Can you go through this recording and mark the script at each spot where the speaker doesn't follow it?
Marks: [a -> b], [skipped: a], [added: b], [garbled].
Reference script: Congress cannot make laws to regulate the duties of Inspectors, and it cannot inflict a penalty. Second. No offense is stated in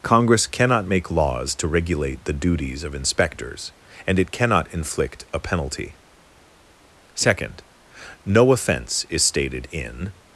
Congress cannot make laws to regulate the duties of Inspectors, and it cannot inflict a penalty. Second. No offense is stated in